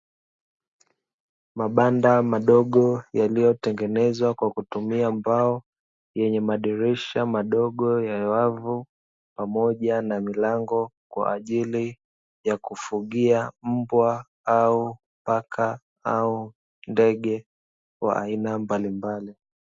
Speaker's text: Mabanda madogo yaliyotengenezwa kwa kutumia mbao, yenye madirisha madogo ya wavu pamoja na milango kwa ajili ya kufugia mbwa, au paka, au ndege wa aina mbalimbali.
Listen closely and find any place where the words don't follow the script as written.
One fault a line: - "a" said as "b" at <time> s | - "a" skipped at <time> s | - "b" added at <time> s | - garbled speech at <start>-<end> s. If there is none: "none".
none